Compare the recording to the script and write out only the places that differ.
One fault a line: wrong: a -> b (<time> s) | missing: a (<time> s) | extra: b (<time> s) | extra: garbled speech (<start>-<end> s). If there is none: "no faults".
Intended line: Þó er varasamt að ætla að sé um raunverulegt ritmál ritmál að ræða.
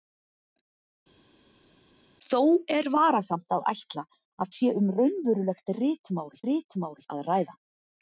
no faults